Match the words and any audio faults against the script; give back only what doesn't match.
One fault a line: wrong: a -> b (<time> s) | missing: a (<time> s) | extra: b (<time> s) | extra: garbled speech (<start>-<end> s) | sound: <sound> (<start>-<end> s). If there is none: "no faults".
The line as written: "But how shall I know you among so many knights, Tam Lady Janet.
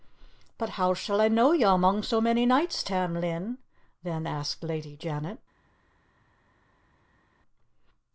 extra: Lin then asked (3.2 s)